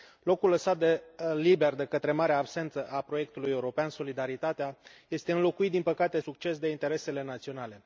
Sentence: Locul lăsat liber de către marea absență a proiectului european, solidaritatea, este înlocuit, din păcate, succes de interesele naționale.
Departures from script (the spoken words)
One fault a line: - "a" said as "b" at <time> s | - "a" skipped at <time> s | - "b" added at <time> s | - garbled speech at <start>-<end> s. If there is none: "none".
none